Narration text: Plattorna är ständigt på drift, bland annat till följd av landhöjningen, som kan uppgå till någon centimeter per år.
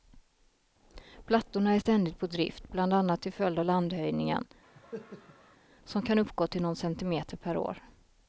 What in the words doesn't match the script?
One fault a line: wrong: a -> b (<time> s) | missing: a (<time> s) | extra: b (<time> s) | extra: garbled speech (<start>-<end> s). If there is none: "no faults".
no faults